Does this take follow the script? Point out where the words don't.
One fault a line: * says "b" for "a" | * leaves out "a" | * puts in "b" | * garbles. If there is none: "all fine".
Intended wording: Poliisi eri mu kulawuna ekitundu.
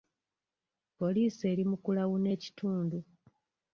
all fine